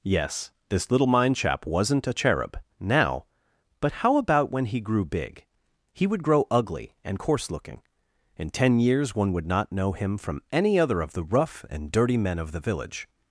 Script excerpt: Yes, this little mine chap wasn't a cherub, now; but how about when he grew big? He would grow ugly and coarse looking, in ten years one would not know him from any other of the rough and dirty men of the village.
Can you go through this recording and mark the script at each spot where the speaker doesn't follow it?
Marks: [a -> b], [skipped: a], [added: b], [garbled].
Yes, this little mine chap wasn't a cherub, now; but how about when he grew big? He would grow ugly and coarse looking, in ten years one would not know him from any other of the rough and dirty men of the village.